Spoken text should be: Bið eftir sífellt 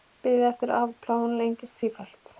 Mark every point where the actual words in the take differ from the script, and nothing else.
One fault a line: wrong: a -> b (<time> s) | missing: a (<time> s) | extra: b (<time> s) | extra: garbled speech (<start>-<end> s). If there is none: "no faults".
extra: afplánun lengist (0.8 s)